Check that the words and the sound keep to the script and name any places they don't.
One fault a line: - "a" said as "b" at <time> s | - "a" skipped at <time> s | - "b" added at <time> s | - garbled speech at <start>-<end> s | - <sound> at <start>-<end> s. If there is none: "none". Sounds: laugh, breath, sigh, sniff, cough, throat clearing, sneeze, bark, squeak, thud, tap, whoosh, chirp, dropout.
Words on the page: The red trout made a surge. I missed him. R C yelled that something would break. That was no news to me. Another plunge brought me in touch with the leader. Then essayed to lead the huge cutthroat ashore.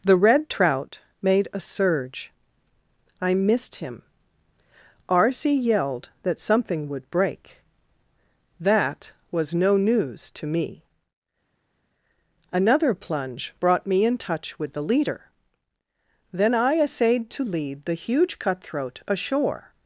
- "I" added at 16.6 s